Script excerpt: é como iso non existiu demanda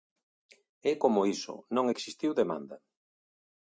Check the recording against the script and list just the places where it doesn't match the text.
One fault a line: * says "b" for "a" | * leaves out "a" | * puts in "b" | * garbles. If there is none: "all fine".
all fine